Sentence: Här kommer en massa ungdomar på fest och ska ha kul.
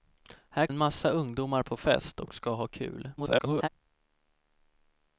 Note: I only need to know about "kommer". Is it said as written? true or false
false